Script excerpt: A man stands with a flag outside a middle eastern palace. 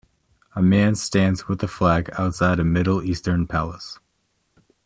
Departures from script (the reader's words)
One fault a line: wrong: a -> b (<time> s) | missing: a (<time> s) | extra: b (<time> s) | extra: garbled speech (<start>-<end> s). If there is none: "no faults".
no faults